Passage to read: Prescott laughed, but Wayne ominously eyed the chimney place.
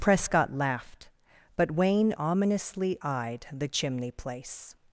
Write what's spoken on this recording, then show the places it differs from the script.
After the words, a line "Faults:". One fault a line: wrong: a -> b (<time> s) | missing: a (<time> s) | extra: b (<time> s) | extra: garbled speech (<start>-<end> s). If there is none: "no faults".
Prescott laughed, but Wayne ominously eyed the chimney place.
Faults:
no faults